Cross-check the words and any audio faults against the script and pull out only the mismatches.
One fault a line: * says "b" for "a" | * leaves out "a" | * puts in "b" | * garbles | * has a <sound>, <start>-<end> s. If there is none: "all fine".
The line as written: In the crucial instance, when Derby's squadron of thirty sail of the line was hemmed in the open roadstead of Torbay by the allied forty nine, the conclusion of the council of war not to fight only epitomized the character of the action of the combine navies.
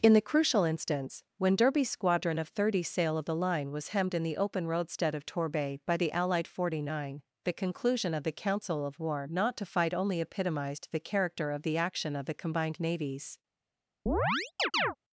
* says "combined" for "combine"
* has a chirp, 14.1-15.0 s